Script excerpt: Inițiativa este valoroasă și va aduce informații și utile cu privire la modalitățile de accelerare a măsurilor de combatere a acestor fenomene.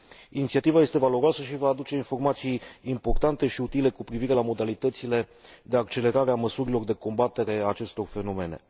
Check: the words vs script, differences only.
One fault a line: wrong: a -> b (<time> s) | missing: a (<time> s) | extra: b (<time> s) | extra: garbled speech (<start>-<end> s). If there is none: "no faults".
extra: importante (2.8 s)